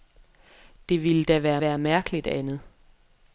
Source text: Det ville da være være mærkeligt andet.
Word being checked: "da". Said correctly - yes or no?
yes